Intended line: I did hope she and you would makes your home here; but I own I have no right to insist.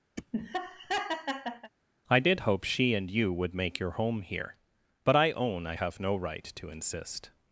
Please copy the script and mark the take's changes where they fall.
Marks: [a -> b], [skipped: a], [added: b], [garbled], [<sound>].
[laugh] I did hope she and you would [makes -> make] your home here; but I own I have no right to insist.